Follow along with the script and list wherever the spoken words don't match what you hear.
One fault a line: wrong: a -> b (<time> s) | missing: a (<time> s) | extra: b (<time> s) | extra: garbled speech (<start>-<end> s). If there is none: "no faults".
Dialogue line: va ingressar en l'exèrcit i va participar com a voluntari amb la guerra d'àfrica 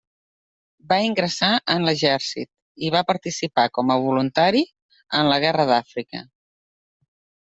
wrong: amb -> en (5.2 s)